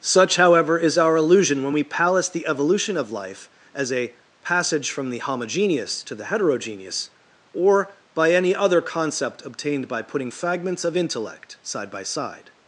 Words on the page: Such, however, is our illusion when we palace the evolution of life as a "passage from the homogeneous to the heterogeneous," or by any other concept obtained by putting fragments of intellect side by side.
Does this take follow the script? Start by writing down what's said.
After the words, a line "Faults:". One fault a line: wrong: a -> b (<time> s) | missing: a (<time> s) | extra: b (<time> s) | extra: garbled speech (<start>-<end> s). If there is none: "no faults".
Such, however, is our illusion when we palace the evolution of life as a "passage from the homogeneous to the heterogeneous," or by any other concept obtained by putting fragments of intellect side by side.
Faults:
no faults